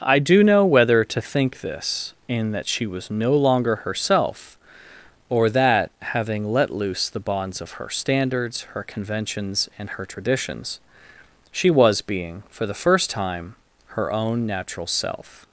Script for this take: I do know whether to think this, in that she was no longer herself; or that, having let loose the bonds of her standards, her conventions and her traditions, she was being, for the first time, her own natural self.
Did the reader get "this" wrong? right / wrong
right